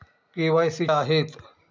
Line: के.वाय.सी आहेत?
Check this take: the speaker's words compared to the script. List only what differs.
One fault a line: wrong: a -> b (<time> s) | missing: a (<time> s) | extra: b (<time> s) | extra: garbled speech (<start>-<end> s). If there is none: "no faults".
no faults